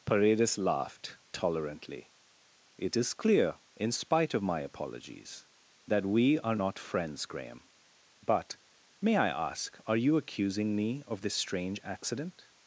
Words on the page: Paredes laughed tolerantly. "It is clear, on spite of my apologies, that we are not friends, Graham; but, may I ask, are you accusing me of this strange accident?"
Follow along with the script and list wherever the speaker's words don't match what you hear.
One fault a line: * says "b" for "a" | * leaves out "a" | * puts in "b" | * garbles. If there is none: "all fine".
* says "in" for "on"